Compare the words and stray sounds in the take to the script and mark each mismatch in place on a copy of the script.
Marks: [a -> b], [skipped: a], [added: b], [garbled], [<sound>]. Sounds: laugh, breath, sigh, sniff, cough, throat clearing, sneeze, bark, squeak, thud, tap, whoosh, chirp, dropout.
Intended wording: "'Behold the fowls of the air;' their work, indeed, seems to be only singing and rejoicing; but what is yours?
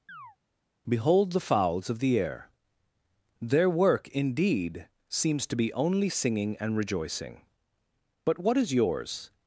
[chirp] "'Behold the fowls of the air;' their work, indeed, seems to be only singing and rejoicing; but what is yours?